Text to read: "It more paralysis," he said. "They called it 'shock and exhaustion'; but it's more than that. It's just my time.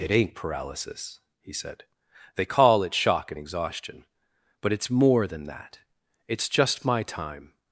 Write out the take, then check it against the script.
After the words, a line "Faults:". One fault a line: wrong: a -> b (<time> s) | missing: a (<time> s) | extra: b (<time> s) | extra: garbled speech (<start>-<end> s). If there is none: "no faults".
"It ain't paralysis," he said. "They call it 'shock and exhaustion'; but it's more than that. It's just my time.
Faults:
wrong: more -> ain't (0.1 s)
wrong: called -> call (2.5 s)